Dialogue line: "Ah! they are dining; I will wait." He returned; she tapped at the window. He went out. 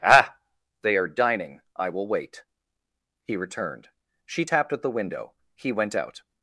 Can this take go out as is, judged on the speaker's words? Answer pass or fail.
pass